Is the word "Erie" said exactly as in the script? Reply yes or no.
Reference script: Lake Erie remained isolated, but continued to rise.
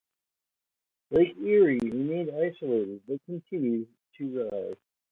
yes